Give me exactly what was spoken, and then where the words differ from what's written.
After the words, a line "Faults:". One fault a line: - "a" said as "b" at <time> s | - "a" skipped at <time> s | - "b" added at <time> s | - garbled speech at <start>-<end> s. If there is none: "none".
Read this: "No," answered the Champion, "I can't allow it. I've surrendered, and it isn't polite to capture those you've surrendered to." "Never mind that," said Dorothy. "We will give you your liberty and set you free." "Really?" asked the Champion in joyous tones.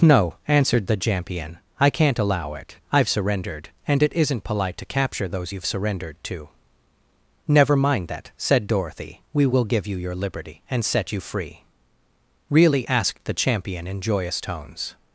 "No," answered the Champion, "I can't allow it. I've surrendered, and it isn't polite to capture those you've surrendered to." "Never mind that," said Dorothy. "We will give you your liberty and set you free." "Really?" asked the Champion in joyous tones.
Faults:
none